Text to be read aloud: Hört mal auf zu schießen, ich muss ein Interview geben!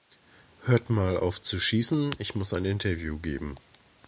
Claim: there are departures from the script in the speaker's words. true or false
false